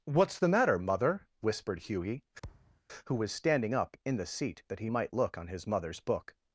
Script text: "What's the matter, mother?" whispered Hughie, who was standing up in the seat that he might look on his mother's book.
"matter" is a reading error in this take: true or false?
false